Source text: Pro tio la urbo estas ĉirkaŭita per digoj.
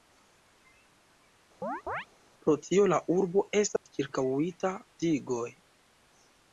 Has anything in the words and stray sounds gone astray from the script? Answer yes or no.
yes